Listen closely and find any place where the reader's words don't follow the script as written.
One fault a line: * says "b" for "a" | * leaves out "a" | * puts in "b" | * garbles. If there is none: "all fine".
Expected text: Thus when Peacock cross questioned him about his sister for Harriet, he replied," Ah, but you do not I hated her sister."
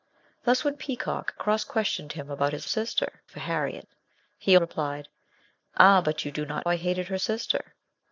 all fine